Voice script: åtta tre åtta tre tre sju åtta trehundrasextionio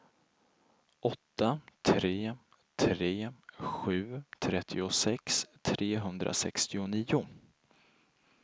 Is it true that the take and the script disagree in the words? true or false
true